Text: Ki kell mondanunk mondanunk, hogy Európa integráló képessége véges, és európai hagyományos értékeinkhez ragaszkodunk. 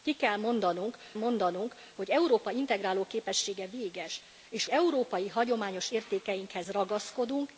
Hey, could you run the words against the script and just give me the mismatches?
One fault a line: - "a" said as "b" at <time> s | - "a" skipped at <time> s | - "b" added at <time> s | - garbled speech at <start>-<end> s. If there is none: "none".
none